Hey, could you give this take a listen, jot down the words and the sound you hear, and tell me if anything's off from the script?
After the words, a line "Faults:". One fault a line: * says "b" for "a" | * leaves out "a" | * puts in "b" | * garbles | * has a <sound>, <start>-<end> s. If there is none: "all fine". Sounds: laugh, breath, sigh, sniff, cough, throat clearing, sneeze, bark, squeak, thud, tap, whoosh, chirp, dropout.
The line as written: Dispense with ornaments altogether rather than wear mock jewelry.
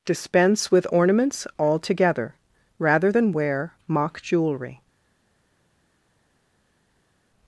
Dispense with ornaments altogether rather than wear mock jewelry.
Faults:
all fine